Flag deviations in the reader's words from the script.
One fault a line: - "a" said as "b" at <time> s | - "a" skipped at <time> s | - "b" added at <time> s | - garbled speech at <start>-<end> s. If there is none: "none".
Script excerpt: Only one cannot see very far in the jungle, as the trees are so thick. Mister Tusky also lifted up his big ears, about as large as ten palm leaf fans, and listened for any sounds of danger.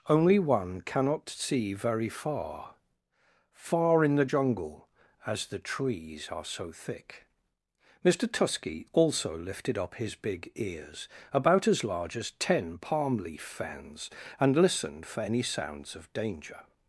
- "far" added at 3.5 s